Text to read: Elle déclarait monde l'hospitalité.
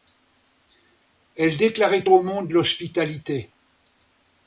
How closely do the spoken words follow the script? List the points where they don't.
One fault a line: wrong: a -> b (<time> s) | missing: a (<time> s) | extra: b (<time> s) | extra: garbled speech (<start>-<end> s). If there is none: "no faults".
extra: au (2.1 s)